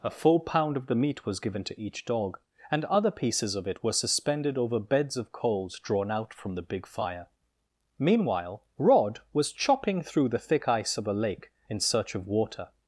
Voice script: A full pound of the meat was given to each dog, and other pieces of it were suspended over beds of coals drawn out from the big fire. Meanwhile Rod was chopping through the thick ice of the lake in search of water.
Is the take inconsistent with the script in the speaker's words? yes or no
yes